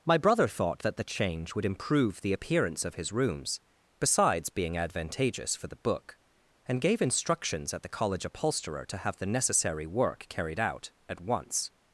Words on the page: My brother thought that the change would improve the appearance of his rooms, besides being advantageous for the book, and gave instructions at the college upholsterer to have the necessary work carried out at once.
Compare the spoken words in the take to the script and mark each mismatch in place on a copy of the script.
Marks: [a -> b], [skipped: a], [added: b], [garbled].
My brother thought that the change would improve the appearance of his rooms, besides being advantageous for the book, and gave instructions at the college upholsterer to have the necessary work carried out at once.